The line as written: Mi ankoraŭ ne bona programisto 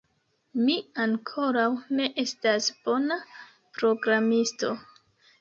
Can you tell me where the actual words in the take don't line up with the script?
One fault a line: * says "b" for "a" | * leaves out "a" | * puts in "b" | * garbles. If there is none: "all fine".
* puts in "estas"